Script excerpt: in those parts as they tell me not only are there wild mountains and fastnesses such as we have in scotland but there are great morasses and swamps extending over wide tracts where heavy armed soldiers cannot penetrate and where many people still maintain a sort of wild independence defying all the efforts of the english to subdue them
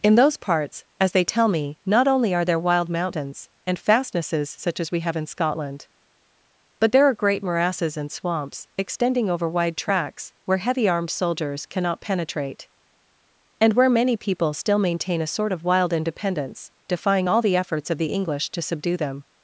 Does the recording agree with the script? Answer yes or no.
yes